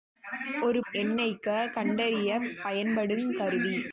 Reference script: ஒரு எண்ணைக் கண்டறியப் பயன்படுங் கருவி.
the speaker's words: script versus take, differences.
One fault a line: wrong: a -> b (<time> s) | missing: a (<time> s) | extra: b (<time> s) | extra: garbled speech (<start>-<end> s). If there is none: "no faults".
no faults